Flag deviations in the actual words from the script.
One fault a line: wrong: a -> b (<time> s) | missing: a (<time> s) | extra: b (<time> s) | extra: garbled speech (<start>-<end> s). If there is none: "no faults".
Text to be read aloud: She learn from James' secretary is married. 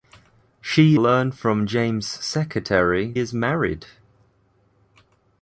no faults